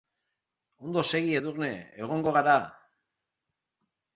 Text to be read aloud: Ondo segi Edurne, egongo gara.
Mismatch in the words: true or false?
false